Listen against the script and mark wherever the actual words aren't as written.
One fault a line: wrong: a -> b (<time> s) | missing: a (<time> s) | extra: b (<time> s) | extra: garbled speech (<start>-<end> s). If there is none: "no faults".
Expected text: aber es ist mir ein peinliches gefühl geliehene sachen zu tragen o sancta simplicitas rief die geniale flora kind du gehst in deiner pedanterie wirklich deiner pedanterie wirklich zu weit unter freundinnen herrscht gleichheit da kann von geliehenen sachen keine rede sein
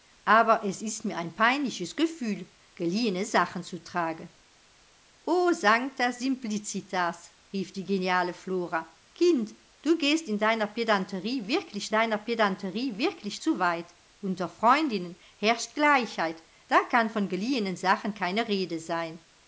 no faults